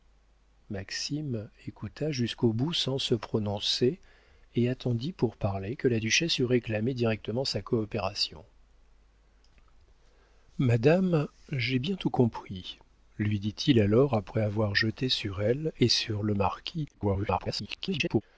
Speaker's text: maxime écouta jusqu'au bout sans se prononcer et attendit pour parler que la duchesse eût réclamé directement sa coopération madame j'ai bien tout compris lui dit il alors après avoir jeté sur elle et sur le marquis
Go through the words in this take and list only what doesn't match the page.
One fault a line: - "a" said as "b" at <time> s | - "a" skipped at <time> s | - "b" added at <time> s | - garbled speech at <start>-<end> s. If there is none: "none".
- garbled speech at 16.9-18.2 s